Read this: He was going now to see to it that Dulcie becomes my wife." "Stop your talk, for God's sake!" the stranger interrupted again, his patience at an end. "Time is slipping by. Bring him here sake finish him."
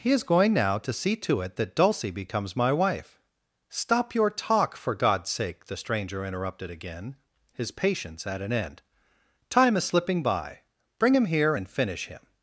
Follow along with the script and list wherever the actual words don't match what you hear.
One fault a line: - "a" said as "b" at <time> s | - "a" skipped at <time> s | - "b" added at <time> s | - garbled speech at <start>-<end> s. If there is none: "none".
- "was" said as "is" at 0.1 s
- "sake" said as "and" at 11.5 s